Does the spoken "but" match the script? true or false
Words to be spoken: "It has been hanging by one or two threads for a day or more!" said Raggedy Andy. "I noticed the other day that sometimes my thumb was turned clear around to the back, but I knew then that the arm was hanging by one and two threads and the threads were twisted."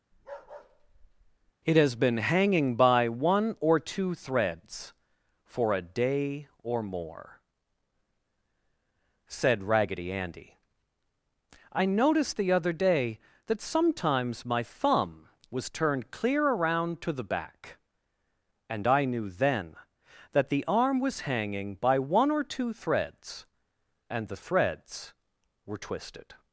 false